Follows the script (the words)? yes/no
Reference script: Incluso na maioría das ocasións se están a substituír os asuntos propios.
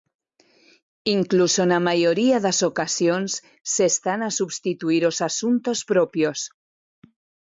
yes